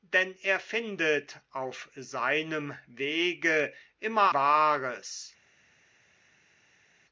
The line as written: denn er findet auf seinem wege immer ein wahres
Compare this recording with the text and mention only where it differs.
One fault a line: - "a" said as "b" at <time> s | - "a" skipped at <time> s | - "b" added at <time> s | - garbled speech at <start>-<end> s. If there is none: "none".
- "ein" skipped at 4.3 s